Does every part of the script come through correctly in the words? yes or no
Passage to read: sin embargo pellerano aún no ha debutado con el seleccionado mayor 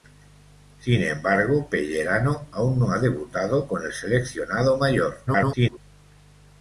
no